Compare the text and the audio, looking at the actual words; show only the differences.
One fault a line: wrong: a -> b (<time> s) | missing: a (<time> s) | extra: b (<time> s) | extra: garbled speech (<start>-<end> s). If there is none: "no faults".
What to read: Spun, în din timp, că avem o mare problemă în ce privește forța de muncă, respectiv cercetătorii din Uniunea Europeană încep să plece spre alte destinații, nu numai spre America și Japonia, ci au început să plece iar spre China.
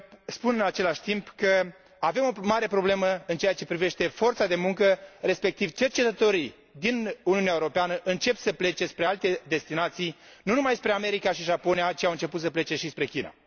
wrong: din -> același (0.6 s)
extra: ceea (3.4 s)
wrong: iar -> și (12.8 s)